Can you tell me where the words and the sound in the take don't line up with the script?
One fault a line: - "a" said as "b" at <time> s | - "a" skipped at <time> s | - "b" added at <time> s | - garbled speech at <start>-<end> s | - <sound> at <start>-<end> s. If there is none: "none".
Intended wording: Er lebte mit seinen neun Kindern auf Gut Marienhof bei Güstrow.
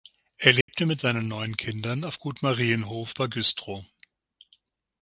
- dropout at 0.6-0.7 s